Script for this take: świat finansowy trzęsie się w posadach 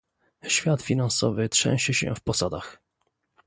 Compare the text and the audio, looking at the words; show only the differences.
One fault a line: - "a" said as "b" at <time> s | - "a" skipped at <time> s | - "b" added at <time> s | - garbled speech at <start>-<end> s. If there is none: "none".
none